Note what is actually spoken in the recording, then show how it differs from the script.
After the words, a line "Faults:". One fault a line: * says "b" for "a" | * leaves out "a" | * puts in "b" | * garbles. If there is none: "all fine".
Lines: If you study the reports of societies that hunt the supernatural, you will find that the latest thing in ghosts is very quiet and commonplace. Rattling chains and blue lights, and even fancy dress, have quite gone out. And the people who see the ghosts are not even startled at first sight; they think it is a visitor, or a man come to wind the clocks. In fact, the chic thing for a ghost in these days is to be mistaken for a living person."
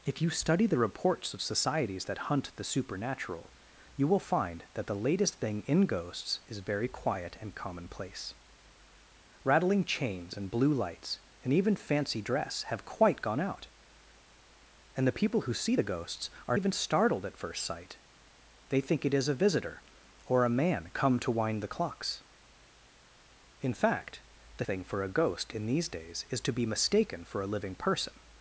If you study the reports of societies that hunt the supernatural, you will find that the latest thing in ghosts is very quiet and commonplace. Rattling chains and blue lights, and even fancy dress, have quite gone out. And the people who see the ghosts are even startled at first sight; they think it is a visitor, or a man come to wind the clocks. In fact, the thing for a ghost in these days is to be mistaken for a living person."
Faults:
* leaves out "not"
* leaves out "chic"